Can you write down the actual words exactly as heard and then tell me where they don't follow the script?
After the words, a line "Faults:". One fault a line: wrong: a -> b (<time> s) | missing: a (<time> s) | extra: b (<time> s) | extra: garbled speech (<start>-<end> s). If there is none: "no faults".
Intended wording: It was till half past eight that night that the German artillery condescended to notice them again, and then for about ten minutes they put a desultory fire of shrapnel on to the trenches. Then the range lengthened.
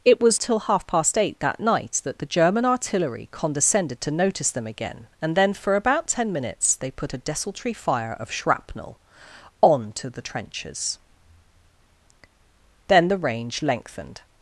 It was till half past eight that night that the German artillery condescended to notice them again, and then for about ten minutes they put a desultory fire of shrapnel on to the trenches. Then the range lengthened.
Faults:
no faults